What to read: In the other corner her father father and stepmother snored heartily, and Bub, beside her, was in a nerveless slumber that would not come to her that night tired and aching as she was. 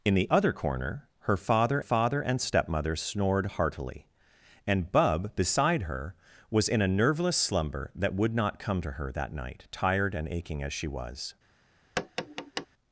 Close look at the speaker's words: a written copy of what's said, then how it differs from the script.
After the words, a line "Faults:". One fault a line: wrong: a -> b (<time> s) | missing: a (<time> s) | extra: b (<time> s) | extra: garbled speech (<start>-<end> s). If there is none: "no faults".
In the other corner her father father and stepmother snored heartily, and Bub, beside her, was in a nerveless slumber that would not come to her that night tired and aching as she was.
Faults:
no faults